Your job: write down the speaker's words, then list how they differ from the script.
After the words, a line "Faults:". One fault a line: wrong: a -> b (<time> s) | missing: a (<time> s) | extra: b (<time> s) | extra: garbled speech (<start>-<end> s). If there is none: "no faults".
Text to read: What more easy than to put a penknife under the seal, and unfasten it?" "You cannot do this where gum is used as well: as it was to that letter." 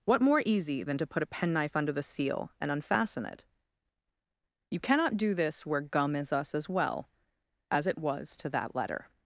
What more easy than to put a penknife under the seal, and unfasten it?" "You cannot do this where gum is us as well: as it was to that letter."
Faults:
wrong: used -> us (6.3 s)